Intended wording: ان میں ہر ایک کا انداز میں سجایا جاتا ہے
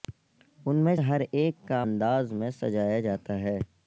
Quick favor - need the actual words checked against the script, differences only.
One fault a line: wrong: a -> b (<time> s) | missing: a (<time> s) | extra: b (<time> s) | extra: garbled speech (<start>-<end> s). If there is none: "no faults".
no faults